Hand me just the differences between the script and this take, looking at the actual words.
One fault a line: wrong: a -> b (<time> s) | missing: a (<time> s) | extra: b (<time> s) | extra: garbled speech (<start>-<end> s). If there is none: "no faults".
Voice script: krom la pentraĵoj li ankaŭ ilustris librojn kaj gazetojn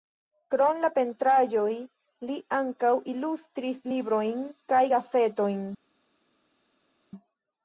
no faults